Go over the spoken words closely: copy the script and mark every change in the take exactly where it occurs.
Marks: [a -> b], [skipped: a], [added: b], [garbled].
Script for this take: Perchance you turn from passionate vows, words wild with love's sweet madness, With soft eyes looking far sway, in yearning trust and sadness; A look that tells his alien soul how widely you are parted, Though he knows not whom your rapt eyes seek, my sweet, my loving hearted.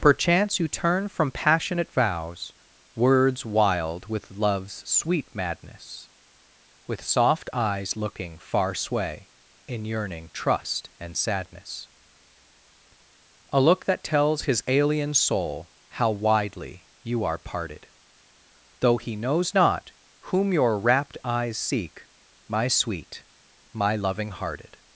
Perchance you turn from passionate vows, words wild with love's sweet madness, With soft eyes looking far sway, in yearning trust and sadness; A look that tells his alien soul how widely you are parted, Though he knows not whom your rapt eyes seek, my sweet, my loving hearted.